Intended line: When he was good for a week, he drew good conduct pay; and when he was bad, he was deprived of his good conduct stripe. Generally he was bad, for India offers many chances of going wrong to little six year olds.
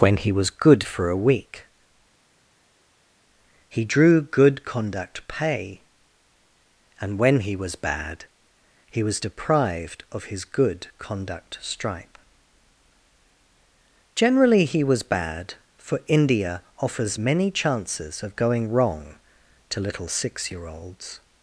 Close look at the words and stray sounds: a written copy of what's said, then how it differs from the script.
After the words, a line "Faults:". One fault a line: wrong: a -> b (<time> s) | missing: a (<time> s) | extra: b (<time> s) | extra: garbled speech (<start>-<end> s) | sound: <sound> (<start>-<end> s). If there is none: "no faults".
When he was good for a week, he drew good conduct pay; and when he was bad, he was deprived of his good conduct stripe. Generally he was bad, for India offers many chances of going wrong to little six year olds.
Faults:
no faults